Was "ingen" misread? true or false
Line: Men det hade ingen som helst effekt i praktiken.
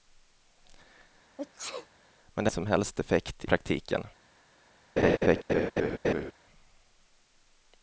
true